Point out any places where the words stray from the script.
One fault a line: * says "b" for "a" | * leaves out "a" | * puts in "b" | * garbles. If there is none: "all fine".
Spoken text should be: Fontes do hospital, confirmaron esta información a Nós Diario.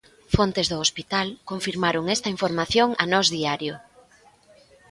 all fine